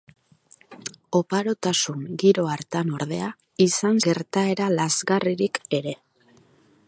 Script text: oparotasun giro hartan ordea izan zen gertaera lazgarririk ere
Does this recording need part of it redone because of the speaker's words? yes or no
yes